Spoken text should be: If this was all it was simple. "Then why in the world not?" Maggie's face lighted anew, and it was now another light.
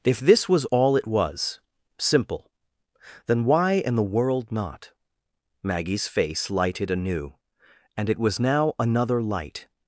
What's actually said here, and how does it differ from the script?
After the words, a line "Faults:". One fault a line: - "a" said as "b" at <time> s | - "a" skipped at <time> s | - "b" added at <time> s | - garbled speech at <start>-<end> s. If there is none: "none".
If this was all it was simple. "Then why in the world not?" Maggie's face lighted anew, and it was now another light.
Faults:
none